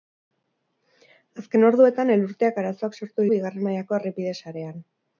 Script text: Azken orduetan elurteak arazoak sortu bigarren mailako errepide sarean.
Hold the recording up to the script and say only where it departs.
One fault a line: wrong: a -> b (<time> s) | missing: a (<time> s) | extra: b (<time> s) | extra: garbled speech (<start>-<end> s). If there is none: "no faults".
no faults